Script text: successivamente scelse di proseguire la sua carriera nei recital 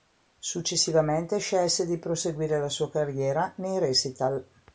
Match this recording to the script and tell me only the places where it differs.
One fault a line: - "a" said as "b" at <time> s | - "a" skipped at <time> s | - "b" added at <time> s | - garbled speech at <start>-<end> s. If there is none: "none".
none